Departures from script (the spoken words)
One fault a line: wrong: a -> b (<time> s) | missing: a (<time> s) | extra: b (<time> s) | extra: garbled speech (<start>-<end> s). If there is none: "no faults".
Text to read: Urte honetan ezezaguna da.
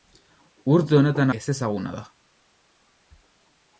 no faults